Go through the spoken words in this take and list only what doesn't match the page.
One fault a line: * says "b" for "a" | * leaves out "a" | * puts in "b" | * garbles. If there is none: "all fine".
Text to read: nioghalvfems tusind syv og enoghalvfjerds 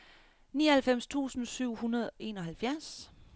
* puts in "hundrede"